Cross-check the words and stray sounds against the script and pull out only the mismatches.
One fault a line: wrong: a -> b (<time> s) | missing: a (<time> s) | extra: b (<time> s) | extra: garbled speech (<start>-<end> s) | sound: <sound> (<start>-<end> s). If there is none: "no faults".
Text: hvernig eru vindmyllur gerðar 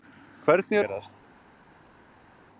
missing: eru vindmyllur (0.8 s)